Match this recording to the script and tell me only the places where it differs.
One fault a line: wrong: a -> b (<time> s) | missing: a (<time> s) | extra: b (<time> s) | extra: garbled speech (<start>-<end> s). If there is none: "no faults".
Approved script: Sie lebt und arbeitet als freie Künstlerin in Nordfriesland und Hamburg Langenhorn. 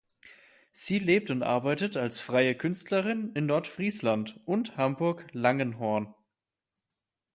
no faults